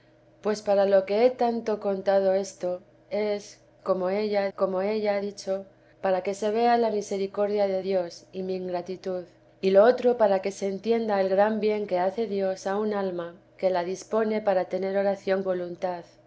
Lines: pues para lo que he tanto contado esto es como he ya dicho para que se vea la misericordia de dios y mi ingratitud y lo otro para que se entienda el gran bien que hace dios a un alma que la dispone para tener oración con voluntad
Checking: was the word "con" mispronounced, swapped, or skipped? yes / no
yes